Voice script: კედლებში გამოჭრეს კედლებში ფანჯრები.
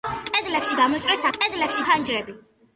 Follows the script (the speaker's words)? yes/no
yes